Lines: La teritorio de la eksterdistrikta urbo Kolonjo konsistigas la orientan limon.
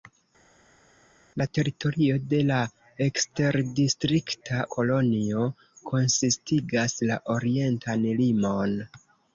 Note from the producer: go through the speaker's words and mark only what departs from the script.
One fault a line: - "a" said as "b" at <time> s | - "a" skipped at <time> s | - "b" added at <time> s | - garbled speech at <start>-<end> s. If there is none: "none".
- "urbo" skipped at 4.6 s